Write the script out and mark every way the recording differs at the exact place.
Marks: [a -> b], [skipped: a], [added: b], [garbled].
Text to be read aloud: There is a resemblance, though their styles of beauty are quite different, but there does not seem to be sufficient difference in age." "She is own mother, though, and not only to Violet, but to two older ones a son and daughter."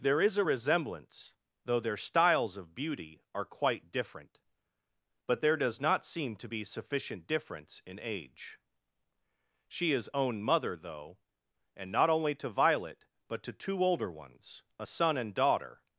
There is a resemblance, though their styles of beauty are quite different, but there does not seem to be sufficient difference in age." "She is own mother, though, and not only to Violet, but to two older ones a son and daughter."